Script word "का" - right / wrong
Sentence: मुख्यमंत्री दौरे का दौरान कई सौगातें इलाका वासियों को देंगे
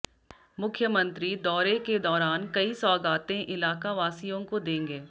wrong